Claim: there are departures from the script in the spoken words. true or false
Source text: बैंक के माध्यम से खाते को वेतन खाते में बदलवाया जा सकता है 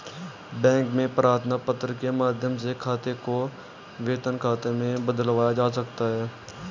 true